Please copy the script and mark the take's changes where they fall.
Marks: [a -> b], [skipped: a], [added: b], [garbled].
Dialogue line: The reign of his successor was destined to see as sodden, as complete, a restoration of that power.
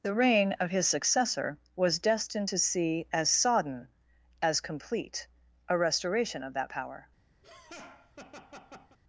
The reign of his successor was destined to see as sodden, as complete, a restoration of that power.